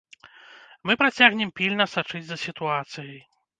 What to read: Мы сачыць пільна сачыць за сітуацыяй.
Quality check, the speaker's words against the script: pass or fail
fail